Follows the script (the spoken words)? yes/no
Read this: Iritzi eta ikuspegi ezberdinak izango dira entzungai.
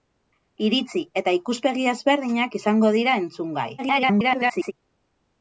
no